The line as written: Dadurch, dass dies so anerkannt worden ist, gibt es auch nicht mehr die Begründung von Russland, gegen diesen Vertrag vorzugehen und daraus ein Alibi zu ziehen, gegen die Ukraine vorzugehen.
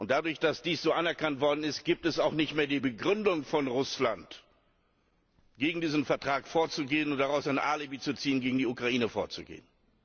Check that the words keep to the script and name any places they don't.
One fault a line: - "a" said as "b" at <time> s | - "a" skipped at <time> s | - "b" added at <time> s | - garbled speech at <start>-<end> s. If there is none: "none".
none